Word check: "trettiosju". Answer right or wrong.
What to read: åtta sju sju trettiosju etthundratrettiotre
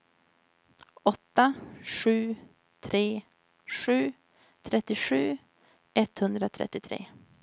right